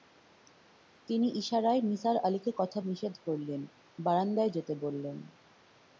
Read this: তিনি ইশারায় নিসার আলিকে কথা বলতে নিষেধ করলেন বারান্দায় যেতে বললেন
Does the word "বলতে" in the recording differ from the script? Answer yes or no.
yes